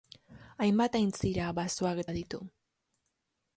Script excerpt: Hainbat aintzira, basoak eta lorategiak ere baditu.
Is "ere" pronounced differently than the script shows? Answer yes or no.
yes